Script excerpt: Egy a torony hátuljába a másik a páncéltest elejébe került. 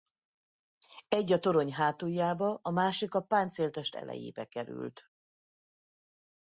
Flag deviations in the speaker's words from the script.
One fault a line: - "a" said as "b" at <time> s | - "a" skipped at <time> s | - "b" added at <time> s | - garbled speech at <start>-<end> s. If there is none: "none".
none